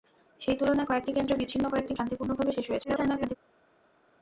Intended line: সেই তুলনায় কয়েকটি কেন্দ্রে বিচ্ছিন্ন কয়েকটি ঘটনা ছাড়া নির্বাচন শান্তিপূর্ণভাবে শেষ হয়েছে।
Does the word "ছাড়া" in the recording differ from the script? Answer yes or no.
yes